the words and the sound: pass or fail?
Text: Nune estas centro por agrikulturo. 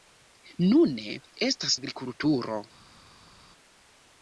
fail